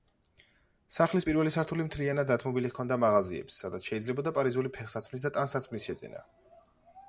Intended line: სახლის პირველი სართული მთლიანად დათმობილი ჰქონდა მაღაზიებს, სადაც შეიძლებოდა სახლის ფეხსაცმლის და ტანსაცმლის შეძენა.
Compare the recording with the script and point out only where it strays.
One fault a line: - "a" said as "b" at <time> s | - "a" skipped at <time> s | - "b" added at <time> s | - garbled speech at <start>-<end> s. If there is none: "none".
- "სახლის" said as "პარიზული" at 4.4 s